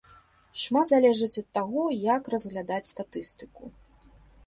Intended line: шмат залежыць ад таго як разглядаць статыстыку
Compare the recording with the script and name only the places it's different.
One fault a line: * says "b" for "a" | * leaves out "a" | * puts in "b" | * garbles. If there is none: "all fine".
all fine